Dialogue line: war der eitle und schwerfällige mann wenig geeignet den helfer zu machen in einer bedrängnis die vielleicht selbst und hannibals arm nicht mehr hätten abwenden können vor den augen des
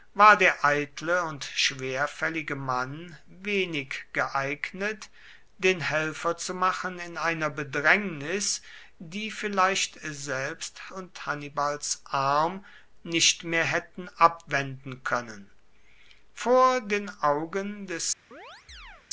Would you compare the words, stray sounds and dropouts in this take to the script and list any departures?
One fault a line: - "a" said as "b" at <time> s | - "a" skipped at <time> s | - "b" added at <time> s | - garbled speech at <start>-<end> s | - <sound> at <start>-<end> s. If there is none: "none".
- chirp at 18.3-19.1 s